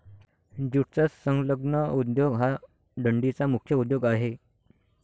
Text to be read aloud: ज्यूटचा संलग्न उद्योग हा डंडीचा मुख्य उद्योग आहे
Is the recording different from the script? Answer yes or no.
no